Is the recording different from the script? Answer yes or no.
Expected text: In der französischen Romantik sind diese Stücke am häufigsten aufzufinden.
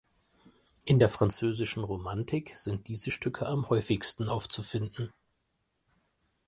no